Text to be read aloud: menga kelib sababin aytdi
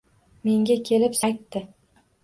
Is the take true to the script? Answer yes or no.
no